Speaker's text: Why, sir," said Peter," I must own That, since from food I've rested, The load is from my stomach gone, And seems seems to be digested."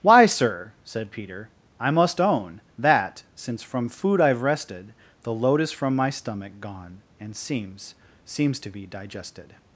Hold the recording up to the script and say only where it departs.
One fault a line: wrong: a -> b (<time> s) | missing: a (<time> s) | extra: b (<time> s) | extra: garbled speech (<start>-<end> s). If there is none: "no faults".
no faults